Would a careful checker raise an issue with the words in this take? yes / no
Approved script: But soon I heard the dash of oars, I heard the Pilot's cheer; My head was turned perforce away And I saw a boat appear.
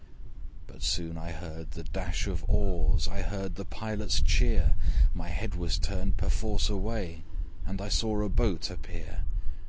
no